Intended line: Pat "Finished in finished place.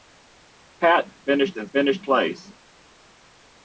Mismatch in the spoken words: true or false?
false